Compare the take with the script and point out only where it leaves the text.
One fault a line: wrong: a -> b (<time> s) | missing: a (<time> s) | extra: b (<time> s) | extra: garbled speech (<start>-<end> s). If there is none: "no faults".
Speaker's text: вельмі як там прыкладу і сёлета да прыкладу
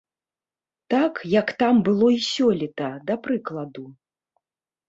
wrong: вельмі -> так (0.9 s)
wrong: прыкладу -> было (1.9 s)